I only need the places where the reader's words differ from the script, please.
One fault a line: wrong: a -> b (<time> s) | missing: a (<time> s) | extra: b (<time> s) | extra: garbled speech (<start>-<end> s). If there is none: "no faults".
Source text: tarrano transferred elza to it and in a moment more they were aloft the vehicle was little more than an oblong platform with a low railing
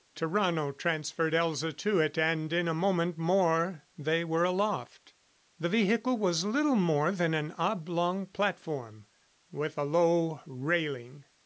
no faults